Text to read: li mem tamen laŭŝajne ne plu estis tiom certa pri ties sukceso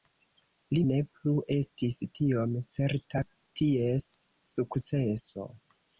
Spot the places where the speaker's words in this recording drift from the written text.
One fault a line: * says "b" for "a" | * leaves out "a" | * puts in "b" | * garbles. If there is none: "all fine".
* leaves out "mem tamen laŭŝajne"
* leaves out "pri"